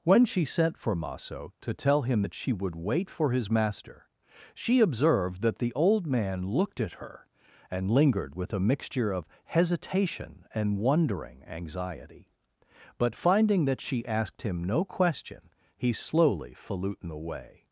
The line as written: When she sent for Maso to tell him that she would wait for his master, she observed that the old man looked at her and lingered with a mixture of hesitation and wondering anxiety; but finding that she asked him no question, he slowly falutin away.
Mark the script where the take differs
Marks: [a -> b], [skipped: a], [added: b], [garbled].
When she sent for Maso to tell him that she would wait for his master, she observed that the old man looked at her and lingered with a mixture of hesitation and wondering anxiety; but finding that she asked him no question, he slowly falutin away.